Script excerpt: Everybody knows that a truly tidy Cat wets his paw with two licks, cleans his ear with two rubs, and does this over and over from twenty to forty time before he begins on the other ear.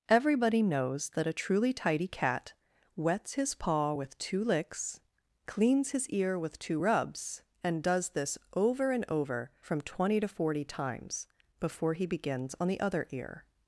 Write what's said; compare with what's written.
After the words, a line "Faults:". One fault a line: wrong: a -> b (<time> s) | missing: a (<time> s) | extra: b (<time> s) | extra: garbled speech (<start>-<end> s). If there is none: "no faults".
Everybody knows that a truly tidy Cat wets his paw with two licks, cleans his ear with two rubs, and does this over and over from twenty to forty times before he begins on the other ear.
Faults:
wrong: time -> times (10.6 s)